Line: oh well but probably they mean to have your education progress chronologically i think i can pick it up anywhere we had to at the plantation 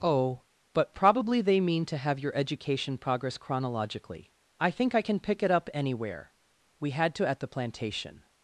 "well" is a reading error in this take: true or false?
true